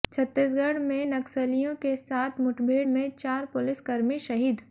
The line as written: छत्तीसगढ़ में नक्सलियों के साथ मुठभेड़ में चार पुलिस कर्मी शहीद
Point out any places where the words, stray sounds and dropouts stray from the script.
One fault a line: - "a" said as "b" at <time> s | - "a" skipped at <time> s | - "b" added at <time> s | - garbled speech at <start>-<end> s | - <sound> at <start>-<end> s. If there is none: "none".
none